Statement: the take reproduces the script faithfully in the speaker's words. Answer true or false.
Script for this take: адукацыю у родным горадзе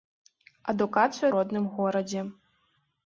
true